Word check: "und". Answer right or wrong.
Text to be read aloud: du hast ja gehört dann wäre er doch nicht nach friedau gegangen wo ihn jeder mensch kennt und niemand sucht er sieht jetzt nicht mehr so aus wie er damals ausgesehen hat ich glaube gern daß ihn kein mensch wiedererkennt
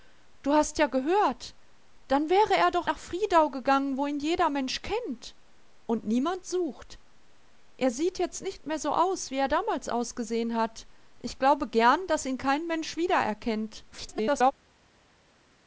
right